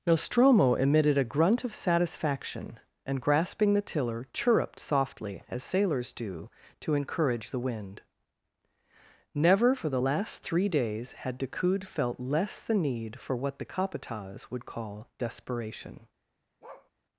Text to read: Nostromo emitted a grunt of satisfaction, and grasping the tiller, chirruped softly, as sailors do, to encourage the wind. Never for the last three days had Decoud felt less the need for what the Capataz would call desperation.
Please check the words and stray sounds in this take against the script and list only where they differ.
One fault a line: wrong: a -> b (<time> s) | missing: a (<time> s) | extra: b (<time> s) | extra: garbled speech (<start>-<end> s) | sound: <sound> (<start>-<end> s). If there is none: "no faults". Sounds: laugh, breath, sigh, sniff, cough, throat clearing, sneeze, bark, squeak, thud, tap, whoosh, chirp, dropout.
sound: bark (16.6-16.9 s)